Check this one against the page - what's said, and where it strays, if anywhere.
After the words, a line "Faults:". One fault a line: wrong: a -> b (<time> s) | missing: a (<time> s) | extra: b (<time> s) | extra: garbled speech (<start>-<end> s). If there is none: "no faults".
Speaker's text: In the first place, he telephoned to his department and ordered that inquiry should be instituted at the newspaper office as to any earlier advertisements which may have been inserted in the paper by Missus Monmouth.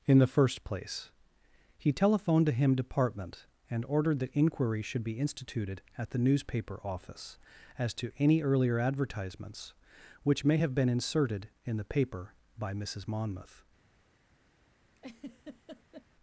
In the first place, he telephoned to him department and ordered that inquiry should be instituted at the newspaper office as to any earlier advertisements which may have been inserted in the paper by Missus Monmouth.
Faults:
wrong: his -> him (2.5 s)